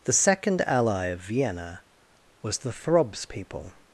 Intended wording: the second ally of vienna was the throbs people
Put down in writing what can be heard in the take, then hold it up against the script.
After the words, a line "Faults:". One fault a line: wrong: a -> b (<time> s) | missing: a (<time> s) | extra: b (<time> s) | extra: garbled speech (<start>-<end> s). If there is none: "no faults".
the second ally of vienna was the throbs people
Faults:
no faults